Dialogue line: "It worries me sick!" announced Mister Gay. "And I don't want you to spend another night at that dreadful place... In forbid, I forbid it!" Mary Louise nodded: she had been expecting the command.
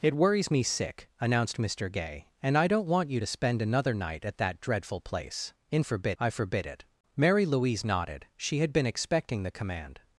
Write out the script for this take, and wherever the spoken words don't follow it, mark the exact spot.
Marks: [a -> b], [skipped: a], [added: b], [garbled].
"It worries me sick!" announced Mister Gay. "And I don't want you to spend another night at that dreadful place... In forbid, I forbid it!" Mary Louise nodded: she had been expecting the command.